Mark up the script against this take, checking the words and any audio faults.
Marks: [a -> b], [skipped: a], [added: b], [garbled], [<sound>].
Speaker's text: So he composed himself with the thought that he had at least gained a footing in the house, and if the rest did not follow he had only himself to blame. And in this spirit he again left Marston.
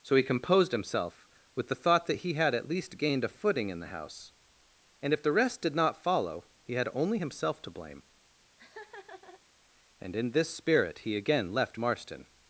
So he composed himself with the thought that he had at least gained a footing in the house, and if the rest did not follow he had only himself to blame. [laugh] And in this spirit he again left Marston.